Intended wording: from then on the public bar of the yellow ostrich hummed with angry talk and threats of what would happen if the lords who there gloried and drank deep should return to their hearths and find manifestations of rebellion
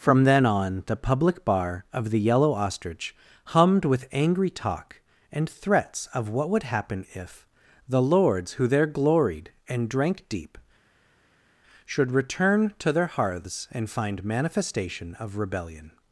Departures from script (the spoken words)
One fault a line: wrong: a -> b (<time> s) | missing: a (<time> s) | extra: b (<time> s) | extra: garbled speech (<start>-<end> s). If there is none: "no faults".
wrong: manifestations -> manifestation (14.2 s)